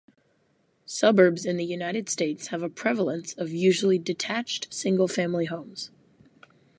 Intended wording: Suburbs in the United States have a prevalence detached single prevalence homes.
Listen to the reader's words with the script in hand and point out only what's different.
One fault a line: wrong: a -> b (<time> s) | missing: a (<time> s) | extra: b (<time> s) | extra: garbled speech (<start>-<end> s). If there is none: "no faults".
extra: of usually (3.4 s)
wrong: prevalence -> family (5.1 s)